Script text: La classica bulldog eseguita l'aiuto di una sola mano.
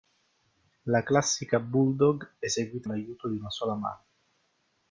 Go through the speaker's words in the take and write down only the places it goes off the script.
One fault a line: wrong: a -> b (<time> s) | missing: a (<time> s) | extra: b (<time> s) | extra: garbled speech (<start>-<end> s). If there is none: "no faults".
no faults